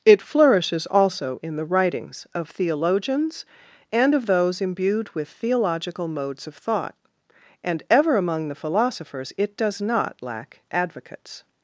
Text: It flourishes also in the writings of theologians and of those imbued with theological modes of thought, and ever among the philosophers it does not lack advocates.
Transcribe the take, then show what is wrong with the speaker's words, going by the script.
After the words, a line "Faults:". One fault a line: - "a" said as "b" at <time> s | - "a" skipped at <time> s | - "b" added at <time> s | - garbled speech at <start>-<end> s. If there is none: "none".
It flourishes also in the writings of theologians and of those imbued with theological modes of thought, and ever among the philosophers it does not lack advocates.
Faults:
none